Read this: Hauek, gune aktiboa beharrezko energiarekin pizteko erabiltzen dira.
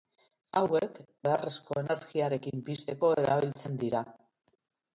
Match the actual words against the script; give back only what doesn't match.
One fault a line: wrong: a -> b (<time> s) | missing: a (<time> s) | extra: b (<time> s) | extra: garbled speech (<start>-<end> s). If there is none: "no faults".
missing: gune aktiboa (1.0 s)